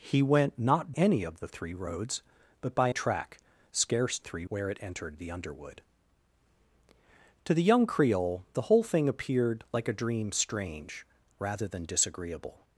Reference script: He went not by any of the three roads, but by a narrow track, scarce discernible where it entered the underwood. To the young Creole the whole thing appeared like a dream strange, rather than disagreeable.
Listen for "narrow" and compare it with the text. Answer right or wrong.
wrong